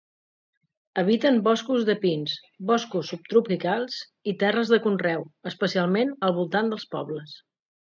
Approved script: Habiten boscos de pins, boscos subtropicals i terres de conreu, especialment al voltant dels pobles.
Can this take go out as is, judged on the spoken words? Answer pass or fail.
pass